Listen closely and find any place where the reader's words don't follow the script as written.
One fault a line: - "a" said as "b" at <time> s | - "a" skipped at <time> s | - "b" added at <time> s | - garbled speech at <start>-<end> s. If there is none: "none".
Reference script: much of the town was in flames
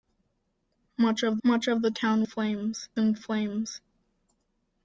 - "much of" added at 1.4 s
- "was" said as "flames" at 2.2 s